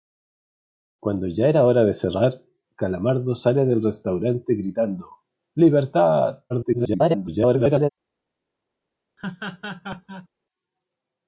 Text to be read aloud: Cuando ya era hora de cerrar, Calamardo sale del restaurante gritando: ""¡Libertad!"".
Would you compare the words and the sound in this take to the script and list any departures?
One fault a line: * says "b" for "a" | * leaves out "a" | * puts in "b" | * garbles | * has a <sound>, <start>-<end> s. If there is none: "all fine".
* garbles
* has a laugh, 9.2-10.3 s